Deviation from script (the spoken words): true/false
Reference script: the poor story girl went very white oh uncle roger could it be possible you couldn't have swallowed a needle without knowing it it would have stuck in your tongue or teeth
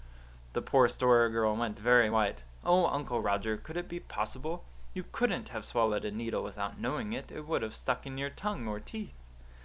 false